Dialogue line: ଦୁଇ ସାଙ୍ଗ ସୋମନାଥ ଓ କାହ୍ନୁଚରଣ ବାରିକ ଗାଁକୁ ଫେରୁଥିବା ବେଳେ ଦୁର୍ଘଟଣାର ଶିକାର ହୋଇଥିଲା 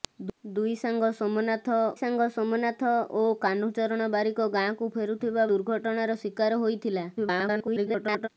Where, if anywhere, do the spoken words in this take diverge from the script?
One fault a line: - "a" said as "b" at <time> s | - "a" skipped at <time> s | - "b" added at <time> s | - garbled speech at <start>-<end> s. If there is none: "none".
- "ସାଙ୍ଗ ସୋମନାଥ" added at 2.0 s
- "ବେଳେ" skipped at 5.5 s
- garbled speech at 7.2-8.3 s